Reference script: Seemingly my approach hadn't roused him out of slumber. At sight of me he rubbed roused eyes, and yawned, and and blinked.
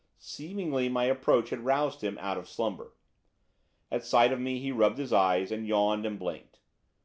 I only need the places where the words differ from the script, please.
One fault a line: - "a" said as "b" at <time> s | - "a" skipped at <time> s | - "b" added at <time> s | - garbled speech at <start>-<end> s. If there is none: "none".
- "hadn't" said as "had" at 1.5 s
- "roused" said as "his" at 5.0 s
- "and" skipped at 6.2 s